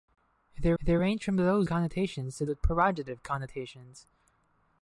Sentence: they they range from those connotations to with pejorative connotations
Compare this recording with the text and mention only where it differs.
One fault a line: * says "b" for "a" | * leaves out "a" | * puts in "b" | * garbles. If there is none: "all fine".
all fine